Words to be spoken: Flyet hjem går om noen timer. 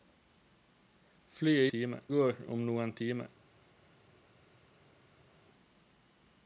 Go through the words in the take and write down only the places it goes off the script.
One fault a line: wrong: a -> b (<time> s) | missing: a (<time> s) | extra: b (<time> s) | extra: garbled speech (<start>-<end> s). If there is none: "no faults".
wrong: hjem -> timer (1.7 s)